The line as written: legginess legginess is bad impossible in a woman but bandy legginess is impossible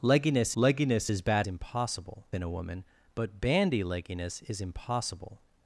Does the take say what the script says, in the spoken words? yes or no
yes